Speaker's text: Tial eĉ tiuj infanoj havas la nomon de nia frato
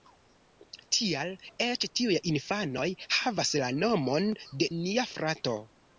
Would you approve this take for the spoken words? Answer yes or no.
yes